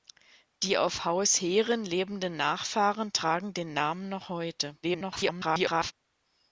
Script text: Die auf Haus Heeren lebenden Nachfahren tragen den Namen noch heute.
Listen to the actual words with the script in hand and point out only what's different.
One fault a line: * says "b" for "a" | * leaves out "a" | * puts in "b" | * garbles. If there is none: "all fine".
* garbles